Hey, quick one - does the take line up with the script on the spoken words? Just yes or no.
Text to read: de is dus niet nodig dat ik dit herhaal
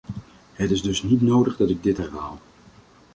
no